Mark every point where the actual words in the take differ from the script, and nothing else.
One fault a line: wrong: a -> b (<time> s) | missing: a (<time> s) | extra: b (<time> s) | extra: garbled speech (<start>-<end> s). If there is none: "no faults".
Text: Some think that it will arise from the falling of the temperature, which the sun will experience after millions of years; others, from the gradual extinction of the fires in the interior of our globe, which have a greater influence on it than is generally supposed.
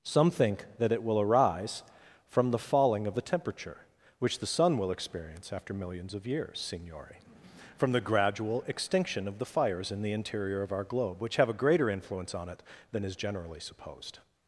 wrong: others -> signore (6.6 s)